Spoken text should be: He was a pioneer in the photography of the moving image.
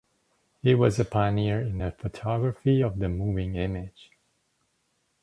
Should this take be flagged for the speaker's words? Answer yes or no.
no